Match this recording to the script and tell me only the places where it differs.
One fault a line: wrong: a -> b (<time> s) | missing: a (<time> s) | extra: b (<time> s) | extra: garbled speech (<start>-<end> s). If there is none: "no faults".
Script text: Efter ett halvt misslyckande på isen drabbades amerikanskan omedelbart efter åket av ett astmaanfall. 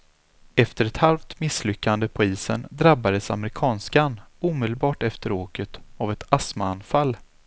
no faults